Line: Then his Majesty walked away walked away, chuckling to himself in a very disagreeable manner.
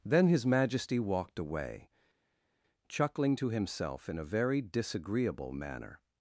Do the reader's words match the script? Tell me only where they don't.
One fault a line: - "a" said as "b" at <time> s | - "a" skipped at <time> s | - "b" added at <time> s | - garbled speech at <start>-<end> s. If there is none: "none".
- "walked away" skipped at 1.9 s